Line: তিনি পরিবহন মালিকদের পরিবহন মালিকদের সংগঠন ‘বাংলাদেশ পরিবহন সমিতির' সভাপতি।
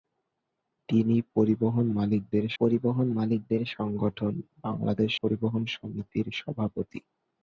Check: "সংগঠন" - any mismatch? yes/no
no